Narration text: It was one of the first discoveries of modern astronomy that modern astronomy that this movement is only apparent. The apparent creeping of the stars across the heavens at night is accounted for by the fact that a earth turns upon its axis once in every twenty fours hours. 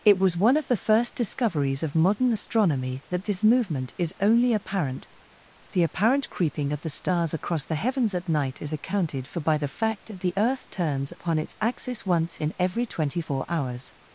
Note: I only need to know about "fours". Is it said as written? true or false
false